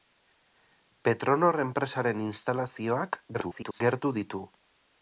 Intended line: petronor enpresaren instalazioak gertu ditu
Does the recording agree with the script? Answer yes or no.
no